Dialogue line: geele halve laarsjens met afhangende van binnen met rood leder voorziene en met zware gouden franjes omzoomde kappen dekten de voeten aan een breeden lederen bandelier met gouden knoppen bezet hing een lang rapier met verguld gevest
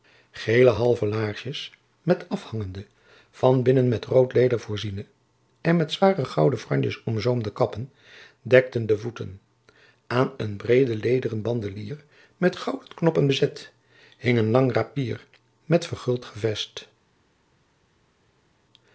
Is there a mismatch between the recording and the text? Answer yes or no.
no